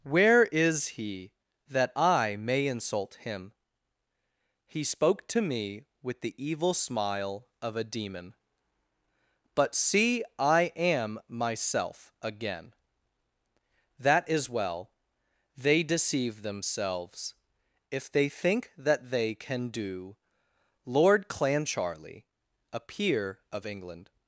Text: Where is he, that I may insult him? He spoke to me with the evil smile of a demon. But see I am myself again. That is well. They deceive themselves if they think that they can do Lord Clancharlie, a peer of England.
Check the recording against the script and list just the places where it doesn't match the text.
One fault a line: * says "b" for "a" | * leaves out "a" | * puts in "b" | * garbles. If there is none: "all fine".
all fine